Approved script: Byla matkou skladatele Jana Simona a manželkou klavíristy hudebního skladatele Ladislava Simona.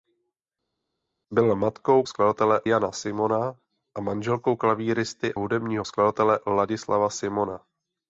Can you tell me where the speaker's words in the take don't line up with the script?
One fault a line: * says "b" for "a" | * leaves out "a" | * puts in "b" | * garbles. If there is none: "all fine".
all fine